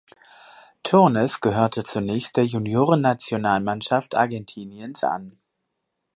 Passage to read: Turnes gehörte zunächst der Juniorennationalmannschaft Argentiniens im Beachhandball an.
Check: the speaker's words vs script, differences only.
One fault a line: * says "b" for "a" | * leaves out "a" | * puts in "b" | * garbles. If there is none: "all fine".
* leaves out "im Beachhandball"